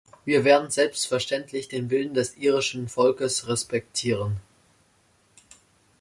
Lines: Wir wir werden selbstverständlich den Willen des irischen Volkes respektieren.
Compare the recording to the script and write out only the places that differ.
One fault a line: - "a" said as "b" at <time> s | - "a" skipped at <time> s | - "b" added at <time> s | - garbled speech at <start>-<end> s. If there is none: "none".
- "wir" skipped at 0.4 s